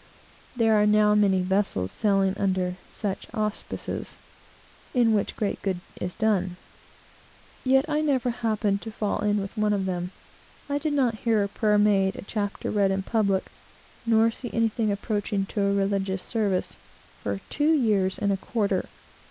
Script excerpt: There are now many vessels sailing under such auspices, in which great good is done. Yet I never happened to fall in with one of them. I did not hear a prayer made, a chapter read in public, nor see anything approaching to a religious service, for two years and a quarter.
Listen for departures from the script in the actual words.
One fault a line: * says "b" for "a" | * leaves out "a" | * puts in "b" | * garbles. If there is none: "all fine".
all fine